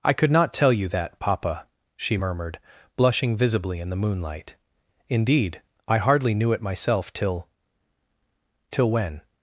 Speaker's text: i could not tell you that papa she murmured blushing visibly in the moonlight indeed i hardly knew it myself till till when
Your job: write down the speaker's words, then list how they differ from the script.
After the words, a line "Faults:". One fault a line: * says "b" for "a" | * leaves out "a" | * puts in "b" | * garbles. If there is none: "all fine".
i could not tell you that papa she murmured blushing visibly in the moonlight indeed i hardly knew it myself till till when
Faults:
all fine